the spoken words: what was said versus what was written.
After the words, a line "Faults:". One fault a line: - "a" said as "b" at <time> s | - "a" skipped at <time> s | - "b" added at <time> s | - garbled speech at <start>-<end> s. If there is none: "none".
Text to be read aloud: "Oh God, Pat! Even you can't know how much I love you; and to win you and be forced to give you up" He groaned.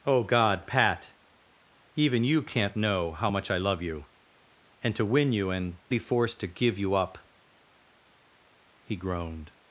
"Oh God, Pat! Even you can't know how much I love you; and to win you and be forced to give you up" He groaned.
Faults:
none